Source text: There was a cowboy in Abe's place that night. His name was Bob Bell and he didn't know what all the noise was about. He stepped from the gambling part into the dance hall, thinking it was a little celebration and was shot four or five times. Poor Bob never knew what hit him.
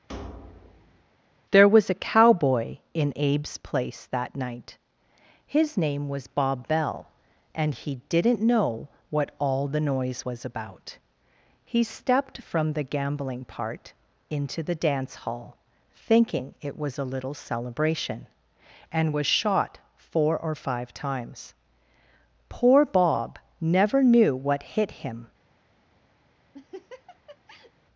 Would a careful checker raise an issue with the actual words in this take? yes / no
no